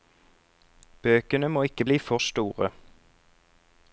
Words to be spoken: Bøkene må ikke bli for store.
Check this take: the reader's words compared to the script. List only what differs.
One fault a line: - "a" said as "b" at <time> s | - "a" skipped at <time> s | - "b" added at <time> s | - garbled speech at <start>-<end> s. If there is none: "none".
none